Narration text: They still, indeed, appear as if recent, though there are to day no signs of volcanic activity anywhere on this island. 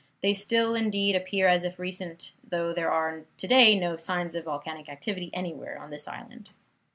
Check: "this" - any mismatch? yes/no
no